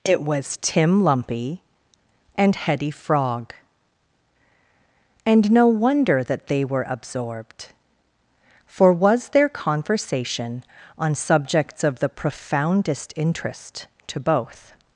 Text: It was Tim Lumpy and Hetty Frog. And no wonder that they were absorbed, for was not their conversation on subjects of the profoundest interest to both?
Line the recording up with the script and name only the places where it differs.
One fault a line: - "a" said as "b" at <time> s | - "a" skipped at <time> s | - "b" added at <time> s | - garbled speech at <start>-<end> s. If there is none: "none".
- "not" skipped at 9.3 s